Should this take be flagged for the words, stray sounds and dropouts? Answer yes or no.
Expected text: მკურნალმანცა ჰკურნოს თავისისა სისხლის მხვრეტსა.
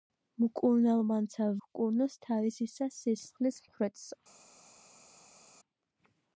no